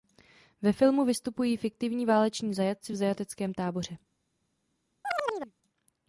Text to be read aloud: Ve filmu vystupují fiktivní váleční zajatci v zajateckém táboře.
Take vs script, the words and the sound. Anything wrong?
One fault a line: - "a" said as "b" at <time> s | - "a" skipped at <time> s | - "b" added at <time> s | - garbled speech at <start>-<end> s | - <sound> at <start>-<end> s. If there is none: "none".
- chirp at 5.0-5.5 s